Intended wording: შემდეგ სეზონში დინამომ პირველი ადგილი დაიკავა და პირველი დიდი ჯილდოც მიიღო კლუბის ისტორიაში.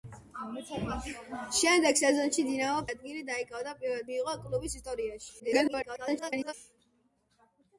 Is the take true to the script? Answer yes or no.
no